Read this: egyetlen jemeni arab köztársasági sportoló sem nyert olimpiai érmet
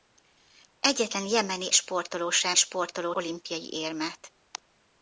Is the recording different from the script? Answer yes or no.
yes